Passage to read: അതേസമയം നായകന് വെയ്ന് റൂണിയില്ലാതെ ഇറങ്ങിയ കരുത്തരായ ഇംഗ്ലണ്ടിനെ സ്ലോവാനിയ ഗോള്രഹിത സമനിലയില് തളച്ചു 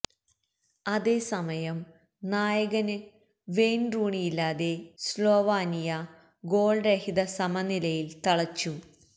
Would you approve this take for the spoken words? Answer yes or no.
no